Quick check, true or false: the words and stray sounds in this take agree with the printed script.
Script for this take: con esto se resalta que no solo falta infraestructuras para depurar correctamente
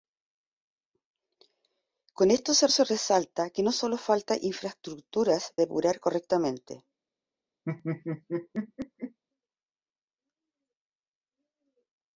false